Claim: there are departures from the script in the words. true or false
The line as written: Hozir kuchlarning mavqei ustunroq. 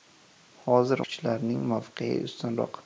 false